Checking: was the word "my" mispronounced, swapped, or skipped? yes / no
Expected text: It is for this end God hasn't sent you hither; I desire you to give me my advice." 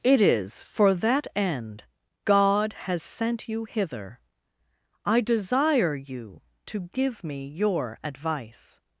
yes